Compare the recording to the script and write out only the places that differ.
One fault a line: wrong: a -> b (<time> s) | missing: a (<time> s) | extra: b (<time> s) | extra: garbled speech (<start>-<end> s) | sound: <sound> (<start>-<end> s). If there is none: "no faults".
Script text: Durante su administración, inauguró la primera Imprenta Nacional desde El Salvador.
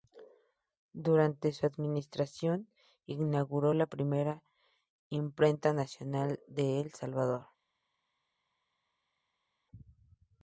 wrong: desde -> de (6.5 s)